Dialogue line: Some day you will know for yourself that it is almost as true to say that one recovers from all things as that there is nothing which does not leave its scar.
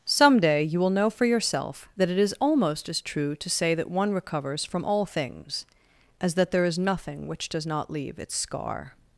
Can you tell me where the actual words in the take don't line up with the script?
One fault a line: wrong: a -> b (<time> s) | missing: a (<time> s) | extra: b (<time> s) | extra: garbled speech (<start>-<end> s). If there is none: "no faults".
no faults